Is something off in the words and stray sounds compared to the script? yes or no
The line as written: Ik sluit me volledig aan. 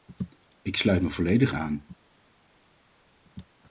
no